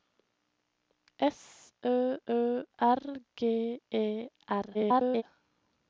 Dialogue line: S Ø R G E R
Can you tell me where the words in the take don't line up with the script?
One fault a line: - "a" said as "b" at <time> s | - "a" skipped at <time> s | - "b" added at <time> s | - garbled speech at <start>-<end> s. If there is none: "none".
- "Ø" added at 2.3 s
- garbled speech at 4.7-5.2 s